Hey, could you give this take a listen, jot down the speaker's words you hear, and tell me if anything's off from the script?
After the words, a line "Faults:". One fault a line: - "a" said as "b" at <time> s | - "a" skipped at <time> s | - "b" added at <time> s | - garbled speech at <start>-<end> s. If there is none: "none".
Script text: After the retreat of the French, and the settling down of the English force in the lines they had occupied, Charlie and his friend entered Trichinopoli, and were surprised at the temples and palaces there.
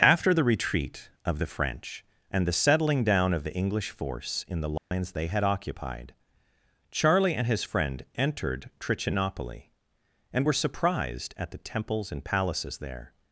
After the retreat of the French, and the settling down of the English force in the lines they had occupied, Charlie and his friend entered Trichinopoli, and were surprised at the temples and palaces there.
Faults:
none